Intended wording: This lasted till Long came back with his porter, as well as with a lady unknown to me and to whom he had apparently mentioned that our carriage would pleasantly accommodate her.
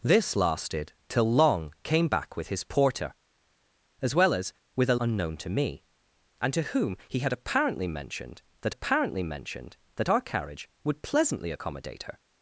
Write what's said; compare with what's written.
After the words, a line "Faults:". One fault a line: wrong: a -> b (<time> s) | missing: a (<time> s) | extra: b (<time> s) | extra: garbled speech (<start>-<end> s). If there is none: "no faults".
This lasted till Long came back with his porter, as well as with a unknown to me and to whom he had apparently mentioned that apparently mentioned that our carriage would pleasantly accommodate her.
Faults:
missing: lady (5.0 s)
extra: apparently mentioned that (8.7 s)